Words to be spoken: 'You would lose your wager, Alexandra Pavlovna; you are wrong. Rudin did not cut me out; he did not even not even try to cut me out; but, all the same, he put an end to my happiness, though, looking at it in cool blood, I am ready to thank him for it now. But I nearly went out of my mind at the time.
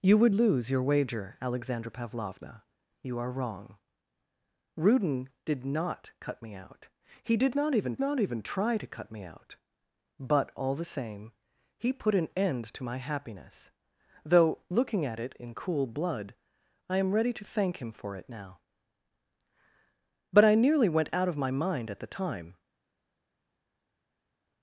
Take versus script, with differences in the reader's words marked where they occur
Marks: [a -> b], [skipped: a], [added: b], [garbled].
'You would lose your wager, Alexandra Pavlovna; you are wrong. Rudin did not cut me out; he did not even not even try to cut me out; but, all the same, he put an end to my happiness, though, looking at it in cool blood, I am ready to thank him for it now. But I nearly went out of my mind at the time.